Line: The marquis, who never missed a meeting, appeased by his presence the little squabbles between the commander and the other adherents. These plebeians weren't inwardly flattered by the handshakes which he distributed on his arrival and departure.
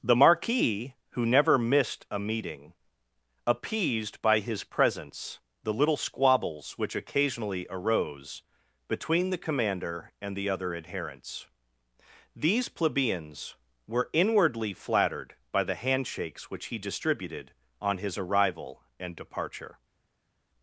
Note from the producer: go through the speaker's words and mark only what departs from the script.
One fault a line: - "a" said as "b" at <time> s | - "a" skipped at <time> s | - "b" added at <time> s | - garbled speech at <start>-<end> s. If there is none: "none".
- "which occasionally arose" added at 6.8 s
- "weren't" said as "were" at 13.9 s